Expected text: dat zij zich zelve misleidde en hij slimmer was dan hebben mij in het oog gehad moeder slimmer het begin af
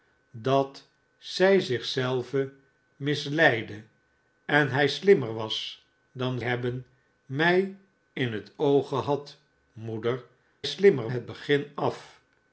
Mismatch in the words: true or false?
false